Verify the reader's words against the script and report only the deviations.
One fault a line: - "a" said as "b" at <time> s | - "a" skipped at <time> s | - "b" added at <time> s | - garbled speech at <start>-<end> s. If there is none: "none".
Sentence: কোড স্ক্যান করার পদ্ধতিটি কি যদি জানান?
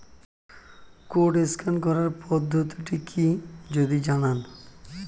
none